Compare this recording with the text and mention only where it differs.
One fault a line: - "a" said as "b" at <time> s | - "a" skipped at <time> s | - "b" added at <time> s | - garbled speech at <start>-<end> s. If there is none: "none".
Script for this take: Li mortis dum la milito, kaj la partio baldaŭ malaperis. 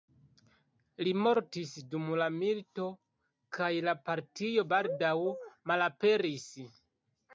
none